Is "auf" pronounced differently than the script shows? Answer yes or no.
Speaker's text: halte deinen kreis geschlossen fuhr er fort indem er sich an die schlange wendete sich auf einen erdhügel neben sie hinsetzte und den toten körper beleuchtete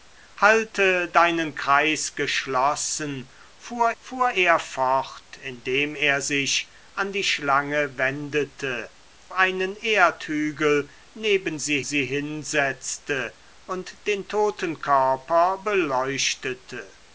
yes